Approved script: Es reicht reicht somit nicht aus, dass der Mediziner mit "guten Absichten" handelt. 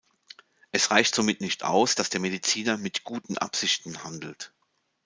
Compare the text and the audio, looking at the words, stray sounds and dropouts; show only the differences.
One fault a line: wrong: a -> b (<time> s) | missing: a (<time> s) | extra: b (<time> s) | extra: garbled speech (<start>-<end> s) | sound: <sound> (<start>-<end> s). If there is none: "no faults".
missing: reicht (1.1 s)